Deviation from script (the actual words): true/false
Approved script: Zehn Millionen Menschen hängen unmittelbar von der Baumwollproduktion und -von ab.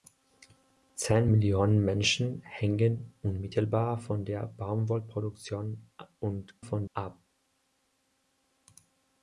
false